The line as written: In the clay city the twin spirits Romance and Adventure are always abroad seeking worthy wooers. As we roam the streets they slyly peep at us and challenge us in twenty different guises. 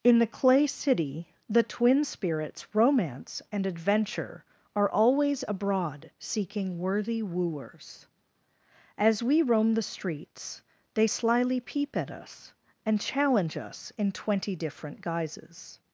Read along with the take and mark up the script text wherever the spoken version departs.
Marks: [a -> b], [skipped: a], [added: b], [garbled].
In the clay city the twin spirits Romance and Adventure are always abroad seeking worthy wooers. As we roam the streets they slyly peep at us and challenge us in twenty different guises.